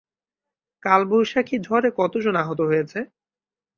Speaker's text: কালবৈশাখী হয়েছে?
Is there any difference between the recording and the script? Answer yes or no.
yes